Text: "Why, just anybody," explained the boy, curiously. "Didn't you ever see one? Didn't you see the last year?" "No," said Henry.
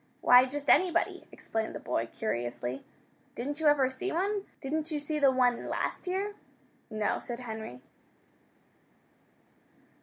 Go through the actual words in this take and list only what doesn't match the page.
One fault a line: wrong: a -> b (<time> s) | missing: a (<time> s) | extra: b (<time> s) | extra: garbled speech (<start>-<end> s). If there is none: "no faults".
extra: one (5.3 s)